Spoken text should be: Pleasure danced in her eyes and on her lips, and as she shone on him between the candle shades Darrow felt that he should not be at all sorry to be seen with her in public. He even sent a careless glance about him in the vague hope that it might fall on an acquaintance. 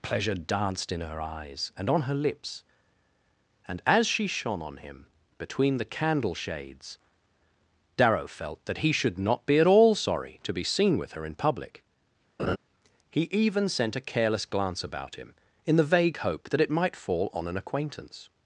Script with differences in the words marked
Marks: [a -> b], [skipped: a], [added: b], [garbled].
Pleasure danced in her eyes and on her lips, and as she shone on him between the candle shades Darrow felt that he should not be at all sorry to be seen with her in public. He even sent a careless glance about him in the vague hope that it might fall on an acquaintance.